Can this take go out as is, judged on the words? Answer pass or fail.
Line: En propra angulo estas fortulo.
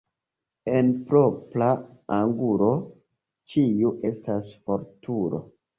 fail